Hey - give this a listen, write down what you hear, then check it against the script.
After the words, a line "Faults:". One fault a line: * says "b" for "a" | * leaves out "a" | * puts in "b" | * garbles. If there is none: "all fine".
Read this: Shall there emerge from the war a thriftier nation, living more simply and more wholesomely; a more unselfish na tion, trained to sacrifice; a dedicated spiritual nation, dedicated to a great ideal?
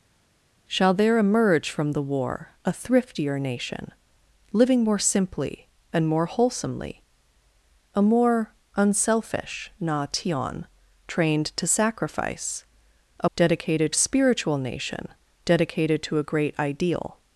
Shall there emerge from the war a thriftier nation, living more simply and more wholesomely; a more unselfish na tion, trained to sacrifice; a dedicated spiritual nation, dedicated to a great ideal?
Faults:
all fine